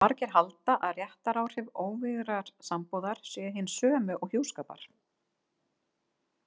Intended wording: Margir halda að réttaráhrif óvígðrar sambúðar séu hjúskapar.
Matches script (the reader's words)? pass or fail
fail